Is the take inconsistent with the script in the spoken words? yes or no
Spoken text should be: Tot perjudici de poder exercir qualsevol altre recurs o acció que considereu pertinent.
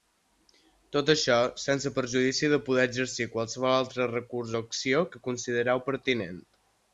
yes